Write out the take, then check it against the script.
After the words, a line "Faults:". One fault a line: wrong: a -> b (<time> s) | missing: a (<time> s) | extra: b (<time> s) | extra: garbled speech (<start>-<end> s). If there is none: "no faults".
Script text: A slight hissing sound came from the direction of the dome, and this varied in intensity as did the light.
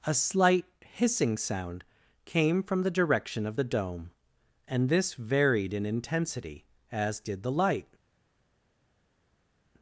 A slight hissing sound came from the direction of the dome, and this varied in intensity as did the light.
Faults:
no faults